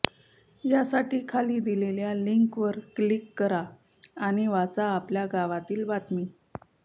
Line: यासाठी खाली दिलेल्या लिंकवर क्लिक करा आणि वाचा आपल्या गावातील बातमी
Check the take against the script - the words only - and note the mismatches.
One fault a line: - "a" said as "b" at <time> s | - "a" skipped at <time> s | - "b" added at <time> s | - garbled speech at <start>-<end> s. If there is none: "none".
none